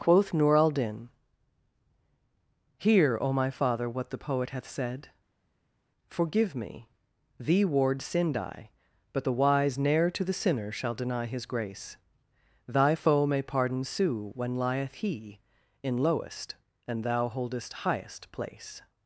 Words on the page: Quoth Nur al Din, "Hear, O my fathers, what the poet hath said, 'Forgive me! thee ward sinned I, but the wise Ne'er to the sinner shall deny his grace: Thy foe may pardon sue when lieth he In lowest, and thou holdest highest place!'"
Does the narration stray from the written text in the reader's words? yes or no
yes